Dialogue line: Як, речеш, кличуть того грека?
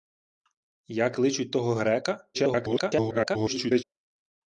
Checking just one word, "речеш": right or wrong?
wrong